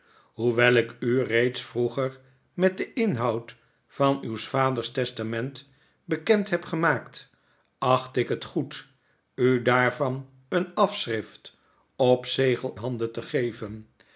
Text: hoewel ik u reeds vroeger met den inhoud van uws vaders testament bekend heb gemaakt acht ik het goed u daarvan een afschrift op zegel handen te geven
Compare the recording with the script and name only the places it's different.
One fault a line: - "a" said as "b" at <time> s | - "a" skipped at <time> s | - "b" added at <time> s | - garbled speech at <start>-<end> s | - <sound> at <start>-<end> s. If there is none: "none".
none